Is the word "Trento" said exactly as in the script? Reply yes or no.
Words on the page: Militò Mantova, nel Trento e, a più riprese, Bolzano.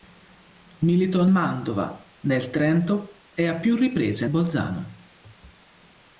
yes